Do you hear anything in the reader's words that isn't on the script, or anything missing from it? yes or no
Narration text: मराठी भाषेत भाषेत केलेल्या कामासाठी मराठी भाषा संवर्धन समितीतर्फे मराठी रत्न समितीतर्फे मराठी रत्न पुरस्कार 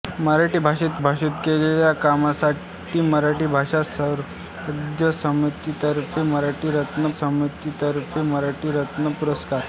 no